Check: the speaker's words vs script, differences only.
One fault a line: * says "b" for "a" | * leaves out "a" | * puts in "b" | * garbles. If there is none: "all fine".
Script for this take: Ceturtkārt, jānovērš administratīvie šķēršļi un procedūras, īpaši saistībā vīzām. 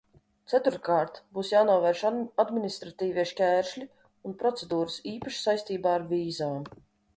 * puts in "būs"
* puts in "ar"